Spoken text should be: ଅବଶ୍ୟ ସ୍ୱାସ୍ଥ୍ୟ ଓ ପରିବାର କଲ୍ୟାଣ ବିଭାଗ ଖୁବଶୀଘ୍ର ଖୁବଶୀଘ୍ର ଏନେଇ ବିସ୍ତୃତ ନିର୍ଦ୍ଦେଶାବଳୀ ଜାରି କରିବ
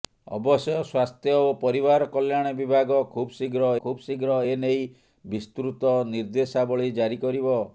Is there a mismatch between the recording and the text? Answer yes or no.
no